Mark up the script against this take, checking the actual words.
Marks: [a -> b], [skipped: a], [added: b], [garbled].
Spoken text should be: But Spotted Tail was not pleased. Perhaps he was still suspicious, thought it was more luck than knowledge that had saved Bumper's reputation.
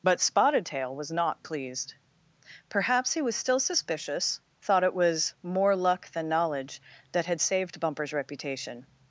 But Spotted Tail was not pleased. Perhaps he was still suspicious, thought it was more luck than knowledge that had saved Bumper's reputation.